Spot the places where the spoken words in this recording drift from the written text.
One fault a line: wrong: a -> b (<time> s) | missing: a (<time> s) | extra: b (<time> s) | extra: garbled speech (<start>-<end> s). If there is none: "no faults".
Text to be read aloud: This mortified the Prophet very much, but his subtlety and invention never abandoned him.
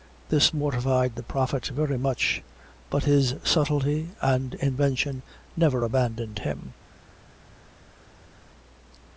no faults